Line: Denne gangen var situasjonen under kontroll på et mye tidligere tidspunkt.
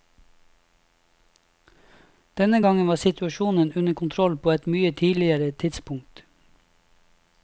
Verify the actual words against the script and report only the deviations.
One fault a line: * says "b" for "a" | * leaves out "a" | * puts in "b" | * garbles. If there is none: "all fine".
all fine